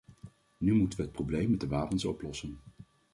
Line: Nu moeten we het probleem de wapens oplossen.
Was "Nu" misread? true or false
false